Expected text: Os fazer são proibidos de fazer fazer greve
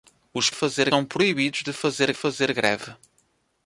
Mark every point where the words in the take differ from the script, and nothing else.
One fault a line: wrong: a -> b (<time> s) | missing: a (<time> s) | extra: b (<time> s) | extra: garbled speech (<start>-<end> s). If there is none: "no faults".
no faults